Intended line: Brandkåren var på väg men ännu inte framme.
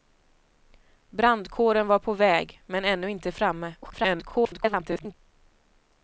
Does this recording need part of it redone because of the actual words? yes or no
yes